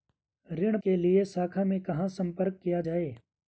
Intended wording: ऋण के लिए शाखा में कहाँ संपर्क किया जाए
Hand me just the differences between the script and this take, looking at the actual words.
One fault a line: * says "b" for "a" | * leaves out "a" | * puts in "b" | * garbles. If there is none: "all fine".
all fine